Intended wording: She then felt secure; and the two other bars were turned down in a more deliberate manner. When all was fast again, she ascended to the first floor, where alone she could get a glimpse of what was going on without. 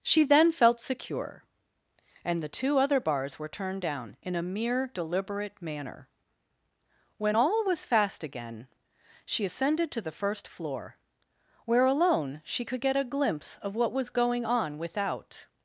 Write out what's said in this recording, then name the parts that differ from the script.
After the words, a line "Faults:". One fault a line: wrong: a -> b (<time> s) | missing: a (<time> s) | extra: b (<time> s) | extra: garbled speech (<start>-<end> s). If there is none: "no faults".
She then felt secure; and the two other bars were turned down in a mere deliberate manner. When all was fast again, she ascended to the first floor, where alone she could get a glimpse of what was going on without.
Faults:
wrong: more -> mere (4.4 s)